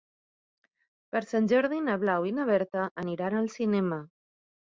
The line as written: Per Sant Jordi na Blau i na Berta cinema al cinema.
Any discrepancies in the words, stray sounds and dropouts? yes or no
yes